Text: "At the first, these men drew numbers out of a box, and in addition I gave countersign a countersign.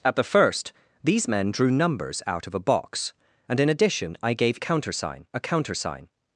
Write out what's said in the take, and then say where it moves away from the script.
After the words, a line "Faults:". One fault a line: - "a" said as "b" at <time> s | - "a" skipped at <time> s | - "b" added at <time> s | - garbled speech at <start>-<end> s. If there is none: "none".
"At the first, these men drew numbers out of a box, and in addition I gave countersign a countersign.
Faults:
none